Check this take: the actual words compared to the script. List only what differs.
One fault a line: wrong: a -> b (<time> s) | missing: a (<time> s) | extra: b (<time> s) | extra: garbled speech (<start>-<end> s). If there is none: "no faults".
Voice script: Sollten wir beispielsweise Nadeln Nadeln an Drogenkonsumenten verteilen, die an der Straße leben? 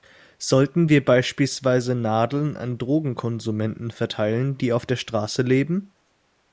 missing: Nadeln (2.6 s)
wrong: an -> auf (4.7 s)